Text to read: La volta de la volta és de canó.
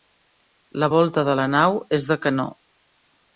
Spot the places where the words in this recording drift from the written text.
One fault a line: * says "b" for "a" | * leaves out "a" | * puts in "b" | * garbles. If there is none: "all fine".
* says "nau" for "volta"